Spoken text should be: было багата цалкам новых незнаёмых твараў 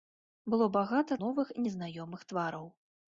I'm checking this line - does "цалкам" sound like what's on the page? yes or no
no